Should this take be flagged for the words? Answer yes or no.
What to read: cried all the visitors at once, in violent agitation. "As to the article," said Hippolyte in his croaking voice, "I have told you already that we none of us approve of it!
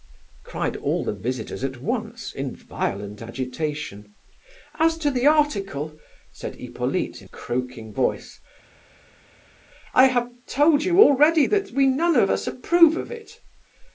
yes